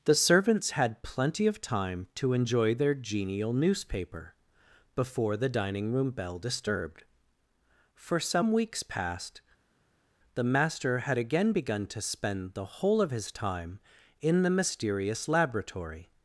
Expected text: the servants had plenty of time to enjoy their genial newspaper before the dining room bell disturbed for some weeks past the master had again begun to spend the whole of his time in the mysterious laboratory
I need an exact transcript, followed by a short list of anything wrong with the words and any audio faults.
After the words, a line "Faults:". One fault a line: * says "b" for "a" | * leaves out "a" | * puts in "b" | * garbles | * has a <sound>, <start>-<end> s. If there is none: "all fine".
the servants had plenty of time to enjoy their genial newspaper before the dining room bell disturbed for some weeks past the master had again begun to spend the whole of his time in the mysterious laboratory
Faults:
all fine